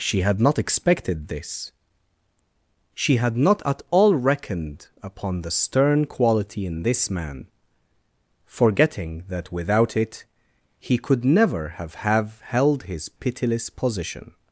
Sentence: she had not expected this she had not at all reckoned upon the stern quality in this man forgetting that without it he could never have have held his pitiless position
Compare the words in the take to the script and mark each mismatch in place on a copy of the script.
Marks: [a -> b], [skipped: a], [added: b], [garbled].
she had not expected this she had not at all reckoned upon the stern quality in this man forgetting that without it he could never have have held his pitiless position